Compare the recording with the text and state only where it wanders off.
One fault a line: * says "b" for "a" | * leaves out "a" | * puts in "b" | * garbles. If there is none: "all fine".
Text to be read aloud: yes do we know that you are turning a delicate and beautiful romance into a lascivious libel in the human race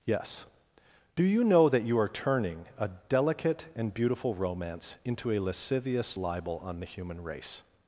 * says "you" for "we"
* says "on" for "in"